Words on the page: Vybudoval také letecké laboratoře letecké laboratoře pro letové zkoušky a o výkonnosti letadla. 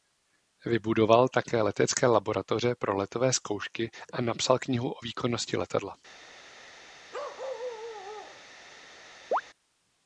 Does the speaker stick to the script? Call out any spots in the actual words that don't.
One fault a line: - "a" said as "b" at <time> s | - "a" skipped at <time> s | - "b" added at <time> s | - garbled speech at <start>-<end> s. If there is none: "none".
- "letecké laboratoře" skipped at 2.8 s
- "napsal knihu" added at 4.2 s